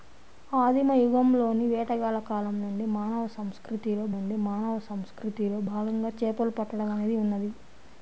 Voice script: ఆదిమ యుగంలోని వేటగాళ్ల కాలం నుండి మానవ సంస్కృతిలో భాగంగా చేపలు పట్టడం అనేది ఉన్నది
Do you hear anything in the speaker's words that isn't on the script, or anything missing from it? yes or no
yes